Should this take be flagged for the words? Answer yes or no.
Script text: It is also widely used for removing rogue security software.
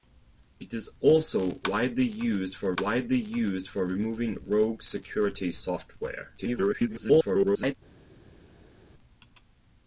yes